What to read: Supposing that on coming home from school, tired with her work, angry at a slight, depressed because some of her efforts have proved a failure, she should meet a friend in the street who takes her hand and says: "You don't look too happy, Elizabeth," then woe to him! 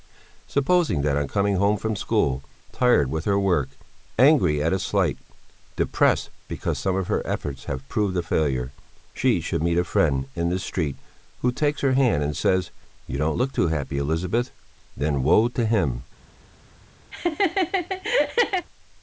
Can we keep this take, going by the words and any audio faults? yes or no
no